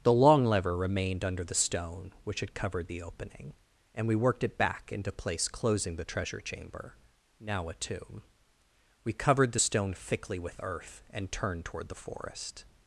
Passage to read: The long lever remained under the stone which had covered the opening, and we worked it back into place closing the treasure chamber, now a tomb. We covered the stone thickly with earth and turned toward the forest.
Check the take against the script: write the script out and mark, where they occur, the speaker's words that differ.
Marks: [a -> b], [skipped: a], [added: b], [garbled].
The long lever remained under the stone which had covered the opening, and we worked it back into place closing the treasure chamber, now a tomb. We covered the stone thickly with earth and turned toward the forest.